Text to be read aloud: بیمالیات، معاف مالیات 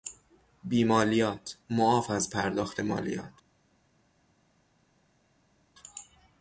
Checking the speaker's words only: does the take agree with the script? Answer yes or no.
no